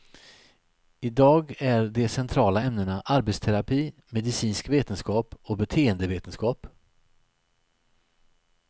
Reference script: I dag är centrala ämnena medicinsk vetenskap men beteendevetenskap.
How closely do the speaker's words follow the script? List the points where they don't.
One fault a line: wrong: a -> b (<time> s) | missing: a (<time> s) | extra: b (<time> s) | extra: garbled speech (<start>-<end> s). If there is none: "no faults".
extra: de (1.9 s)
extra: arbetsterapi (3.0 s)
wrong: men -> och (5.4 s)